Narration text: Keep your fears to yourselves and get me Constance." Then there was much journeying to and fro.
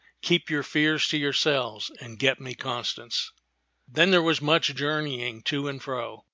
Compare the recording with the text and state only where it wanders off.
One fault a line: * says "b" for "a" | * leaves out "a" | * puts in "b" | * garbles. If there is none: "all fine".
all fine